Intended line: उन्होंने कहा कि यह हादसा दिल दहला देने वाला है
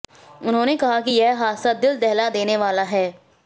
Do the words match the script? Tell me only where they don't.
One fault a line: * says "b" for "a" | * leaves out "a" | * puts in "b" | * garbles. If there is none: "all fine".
all fine